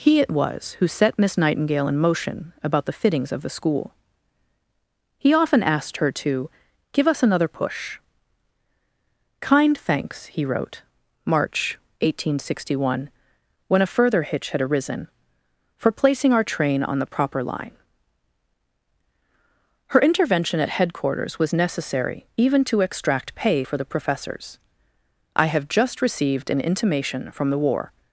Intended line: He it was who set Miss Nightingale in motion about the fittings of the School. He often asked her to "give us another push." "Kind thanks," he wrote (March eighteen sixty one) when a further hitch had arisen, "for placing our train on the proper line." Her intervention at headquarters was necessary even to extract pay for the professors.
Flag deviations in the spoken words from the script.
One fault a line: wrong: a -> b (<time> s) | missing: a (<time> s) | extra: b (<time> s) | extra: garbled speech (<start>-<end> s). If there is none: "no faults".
extra: I have just received an intimation from the War (25.3 s)